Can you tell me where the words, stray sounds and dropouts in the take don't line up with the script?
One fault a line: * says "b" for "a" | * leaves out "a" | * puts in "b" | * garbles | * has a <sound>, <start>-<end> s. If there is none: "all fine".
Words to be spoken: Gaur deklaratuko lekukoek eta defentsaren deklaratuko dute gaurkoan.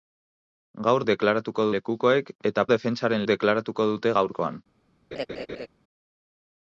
* has a laugh, 5.1-5.7 s